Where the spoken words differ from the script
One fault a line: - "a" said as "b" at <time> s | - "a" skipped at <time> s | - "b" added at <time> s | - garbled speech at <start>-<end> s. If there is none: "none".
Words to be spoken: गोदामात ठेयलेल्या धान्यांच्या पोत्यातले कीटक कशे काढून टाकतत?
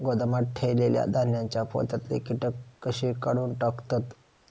none